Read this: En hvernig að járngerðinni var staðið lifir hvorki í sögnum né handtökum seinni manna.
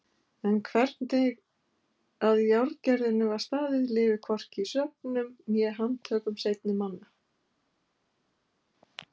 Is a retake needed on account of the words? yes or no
no